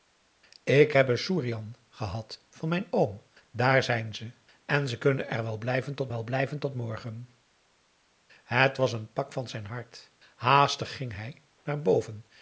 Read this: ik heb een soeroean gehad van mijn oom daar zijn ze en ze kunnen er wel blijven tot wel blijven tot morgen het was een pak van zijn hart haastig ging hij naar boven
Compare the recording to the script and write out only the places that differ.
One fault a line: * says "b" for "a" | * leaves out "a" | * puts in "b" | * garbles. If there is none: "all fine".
all fine